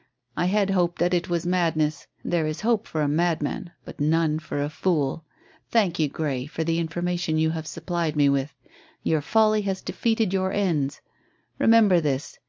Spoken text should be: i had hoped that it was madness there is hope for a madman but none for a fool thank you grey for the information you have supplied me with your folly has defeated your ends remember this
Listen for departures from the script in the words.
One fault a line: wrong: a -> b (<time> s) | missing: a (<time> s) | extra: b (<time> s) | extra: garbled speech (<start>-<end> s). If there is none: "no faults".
no faults